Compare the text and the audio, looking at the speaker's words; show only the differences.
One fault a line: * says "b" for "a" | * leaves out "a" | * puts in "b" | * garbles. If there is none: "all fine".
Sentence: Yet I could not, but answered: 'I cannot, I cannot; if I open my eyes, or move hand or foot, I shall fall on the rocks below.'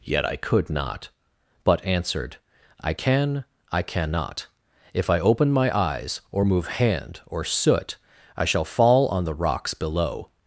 * says "can" for "cannot"
* says "soot" for "foot"